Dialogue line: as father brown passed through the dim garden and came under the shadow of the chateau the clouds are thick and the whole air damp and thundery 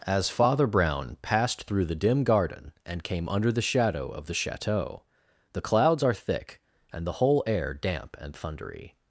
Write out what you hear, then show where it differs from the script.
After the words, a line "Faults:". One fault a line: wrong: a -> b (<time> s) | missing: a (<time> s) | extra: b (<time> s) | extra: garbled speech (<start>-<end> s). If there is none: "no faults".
as father brown passed through the dim garden and came under the shadow of the chateau the clouds are thick and the whole air damp and thundery
Faults:
no faults